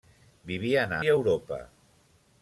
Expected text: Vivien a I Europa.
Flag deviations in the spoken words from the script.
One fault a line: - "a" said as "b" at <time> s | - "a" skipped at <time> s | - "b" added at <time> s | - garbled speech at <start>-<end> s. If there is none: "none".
none